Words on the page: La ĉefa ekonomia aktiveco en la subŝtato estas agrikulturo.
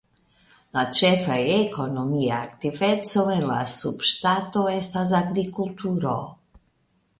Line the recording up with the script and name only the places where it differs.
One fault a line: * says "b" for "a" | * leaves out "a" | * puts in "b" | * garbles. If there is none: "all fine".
all fine